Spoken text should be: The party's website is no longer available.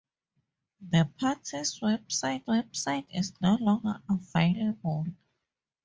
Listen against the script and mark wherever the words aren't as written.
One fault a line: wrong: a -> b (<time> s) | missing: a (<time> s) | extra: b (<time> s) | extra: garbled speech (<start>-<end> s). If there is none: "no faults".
extra: website (2.5 s)